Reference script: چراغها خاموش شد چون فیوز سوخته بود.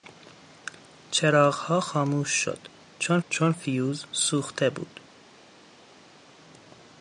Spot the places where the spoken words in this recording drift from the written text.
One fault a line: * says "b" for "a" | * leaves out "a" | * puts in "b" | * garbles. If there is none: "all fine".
* puts in "چون"